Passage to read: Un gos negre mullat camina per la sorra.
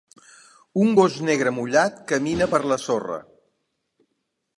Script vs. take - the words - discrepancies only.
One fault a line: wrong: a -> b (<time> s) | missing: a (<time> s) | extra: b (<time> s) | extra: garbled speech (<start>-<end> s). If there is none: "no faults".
no faults